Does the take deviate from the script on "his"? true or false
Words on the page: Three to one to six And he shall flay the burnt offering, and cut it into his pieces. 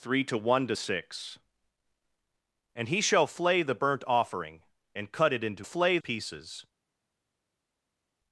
true